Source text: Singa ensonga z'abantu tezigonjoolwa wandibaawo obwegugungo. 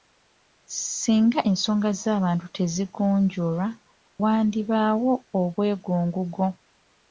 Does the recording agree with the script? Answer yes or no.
yes